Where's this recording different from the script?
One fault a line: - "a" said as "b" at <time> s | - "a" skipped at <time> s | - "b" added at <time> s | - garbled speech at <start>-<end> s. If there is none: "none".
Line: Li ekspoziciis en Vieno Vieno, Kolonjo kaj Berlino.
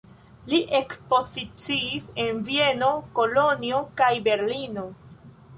- "Vieno" skipped at 2.9 s